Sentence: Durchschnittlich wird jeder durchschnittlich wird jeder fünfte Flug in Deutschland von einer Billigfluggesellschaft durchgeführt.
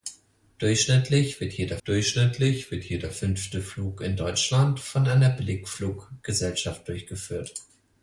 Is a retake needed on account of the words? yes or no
no